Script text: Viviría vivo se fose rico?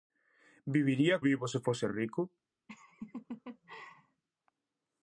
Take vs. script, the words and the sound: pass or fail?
fail